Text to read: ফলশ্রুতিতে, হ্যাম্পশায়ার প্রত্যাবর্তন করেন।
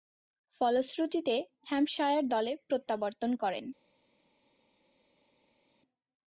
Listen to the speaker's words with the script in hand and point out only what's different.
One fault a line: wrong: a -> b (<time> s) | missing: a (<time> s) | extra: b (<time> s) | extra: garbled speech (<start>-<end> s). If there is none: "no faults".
extra: দলে (2.3 s)